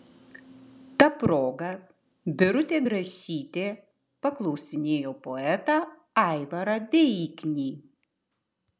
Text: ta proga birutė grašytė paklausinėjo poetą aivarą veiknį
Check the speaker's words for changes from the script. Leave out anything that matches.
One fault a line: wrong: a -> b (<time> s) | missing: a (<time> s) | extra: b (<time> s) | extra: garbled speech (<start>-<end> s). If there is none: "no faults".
no faults